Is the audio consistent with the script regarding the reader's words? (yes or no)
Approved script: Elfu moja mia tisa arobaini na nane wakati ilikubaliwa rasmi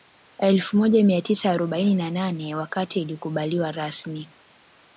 yes